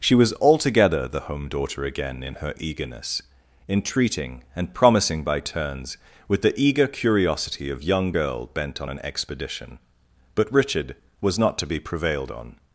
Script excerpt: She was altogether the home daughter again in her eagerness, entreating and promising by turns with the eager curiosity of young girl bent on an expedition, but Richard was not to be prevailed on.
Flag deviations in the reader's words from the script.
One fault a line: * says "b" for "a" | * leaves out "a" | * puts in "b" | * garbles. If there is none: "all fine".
all fine